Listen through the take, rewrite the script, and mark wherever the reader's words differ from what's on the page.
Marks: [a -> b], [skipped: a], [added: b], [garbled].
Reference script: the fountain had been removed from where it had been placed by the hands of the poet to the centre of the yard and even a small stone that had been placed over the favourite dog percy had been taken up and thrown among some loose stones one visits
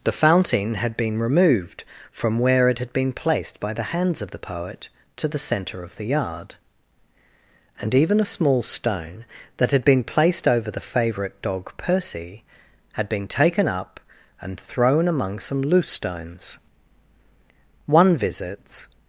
the fountain had been removed from where it had been placed by the hands of the poet to the centre of the yard and even a small stone that had been placed over the favourite dog percy had been taken up and thrown among some loose stones one visits